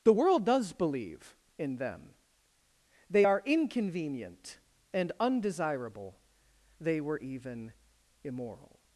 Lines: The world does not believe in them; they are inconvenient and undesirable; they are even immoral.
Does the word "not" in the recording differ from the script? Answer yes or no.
yes